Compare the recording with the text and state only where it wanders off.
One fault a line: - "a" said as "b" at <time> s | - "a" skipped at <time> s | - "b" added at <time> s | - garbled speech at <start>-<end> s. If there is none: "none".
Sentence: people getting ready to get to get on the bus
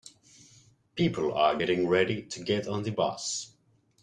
- "are" added at 1.4 s
- "to get" skipped at 2.7 s